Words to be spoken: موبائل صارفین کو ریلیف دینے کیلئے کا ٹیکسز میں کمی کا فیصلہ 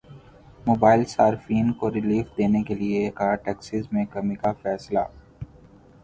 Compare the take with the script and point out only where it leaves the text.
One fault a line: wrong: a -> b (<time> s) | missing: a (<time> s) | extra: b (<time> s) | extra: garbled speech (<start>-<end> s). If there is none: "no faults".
no faults